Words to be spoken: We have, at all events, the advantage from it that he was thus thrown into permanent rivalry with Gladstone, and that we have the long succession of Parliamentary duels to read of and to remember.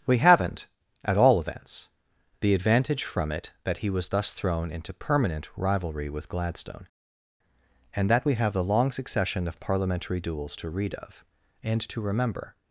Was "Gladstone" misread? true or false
false